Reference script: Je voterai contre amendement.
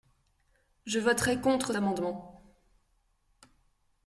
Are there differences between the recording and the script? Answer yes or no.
no